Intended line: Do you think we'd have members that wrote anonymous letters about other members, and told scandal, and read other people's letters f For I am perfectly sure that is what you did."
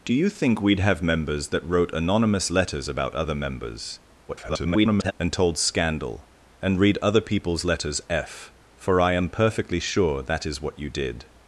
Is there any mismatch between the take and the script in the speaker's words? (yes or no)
yes